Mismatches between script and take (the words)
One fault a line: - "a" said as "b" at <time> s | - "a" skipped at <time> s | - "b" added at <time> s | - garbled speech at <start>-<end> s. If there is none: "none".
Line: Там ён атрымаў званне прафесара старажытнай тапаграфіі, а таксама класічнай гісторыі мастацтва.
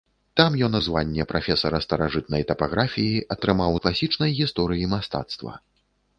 - "атрымаў" skipped at 0.8 s
- "таксама" said as "атрымаў" at 3.3 s